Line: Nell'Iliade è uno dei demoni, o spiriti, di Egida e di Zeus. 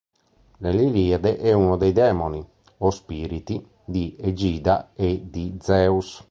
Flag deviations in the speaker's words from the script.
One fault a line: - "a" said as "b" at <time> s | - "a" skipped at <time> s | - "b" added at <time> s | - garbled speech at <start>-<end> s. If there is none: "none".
none